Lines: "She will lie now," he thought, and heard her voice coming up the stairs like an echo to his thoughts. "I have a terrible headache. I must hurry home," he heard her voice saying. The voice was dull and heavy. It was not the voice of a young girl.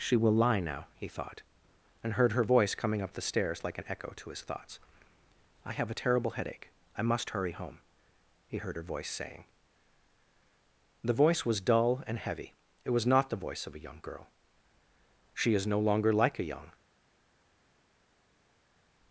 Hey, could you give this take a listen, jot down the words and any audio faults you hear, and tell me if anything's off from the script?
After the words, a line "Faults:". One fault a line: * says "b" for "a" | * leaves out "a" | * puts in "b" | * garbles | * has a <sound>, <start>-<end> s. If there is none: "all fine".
"She will lie now," he thought, and heard her voice coming up the stairs like an echo to his thoughts. "I have a terrible headache. I must hurry home," he heard her voice saying. The voice was dull and heavy. It was not the voice of a young girl. "She is no longer like a young
Faults:
* puts in "She is no longer like a young"